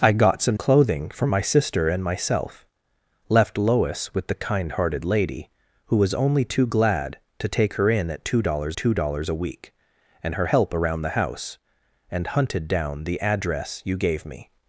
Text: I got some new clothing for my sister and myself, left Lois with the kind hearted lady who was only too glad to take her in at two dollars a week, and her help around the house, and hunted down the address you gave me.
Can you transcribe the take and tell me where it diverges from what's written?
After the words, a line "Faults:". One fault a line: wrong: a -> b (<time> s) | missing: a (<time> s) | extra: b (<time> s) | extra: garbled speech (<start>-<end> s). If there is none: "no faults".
I got some clothing for my sister and myself, left Lois with the kind hearted lady who was only too glad to take her in at two dollars two dollars a week, and her help around the house, and hunted down the address you gave me.
Faults:
missing: new (0.6 s)
extra: two dollars (8.7 s)